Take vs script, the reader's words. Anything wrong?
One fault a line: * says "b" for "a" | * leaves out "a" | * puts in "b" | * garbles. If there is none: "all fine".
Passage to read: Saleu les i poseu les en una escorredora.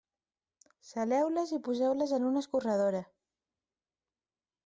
all fine